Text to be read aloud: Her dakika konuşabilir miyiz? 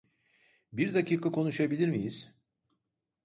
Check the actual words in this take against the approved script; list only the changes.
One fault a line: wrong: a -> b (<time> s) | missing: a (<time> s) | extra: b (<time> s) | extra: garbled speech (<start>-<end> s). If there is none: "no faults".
wrong: Her -> Bir (0.7 s)